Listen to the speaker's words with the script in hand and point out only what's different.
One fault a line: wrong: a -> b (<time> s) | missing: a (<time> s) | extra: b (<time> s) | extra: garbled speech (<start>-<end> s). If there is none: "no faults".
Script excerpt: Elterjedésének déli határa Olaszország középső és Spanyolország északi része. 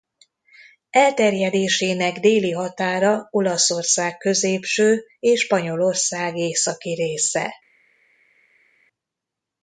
no faults